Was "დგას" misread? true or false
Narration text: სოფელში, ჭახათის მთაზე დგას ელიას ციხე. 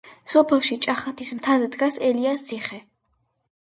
false